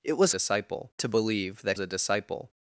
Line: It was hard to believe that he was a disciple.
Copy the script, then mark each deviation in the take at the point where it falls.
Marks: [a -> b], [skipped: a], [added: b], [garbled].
It was [hard -> disciple] to believe that [skipped: he was] a disciple.